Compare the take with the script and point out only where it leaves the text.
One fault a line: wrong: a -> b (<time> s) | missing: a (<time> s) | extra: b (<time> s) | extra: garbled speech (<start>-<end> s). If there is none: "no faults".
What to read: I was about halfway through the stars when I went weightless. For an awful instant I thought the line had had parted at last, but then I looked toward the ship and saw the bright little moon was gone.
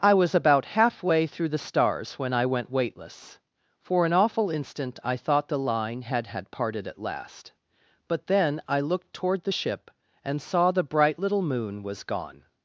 no faults